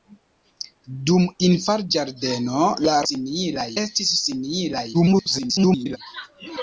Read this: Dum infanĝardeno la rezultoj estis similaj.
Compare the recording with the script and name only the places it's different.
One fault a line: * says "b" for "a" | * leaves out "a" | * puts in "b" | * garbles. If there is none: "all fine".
* says "similaj" for "rezultoj"
* garbles